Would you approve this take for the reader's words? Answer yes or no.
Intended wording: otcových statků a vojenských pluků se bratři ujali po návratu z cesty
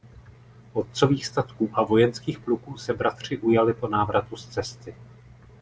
yes